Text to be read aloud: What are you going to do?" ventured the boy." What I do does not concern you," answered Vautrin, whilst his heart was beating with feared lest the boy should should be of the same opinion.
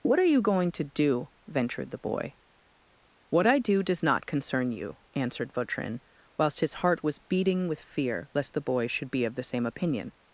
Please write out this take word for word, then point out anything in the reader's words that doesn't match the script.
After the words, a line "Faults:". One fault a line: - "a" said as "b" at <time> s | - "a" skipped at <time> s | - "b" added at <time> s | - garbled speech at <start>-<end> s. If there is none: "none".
What are you going to do?" ventured the boy." What I do does not concern you," answered Vautrin, whilst his heart was beating with fear lest the boy should be of the same opinion.
Faults:
- "feared" said as "fear" at 7.8 s
- "should" skipped at 9.1 s